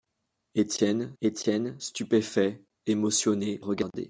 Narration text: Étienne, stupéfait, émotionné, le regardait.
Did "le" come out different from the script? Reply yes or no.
yes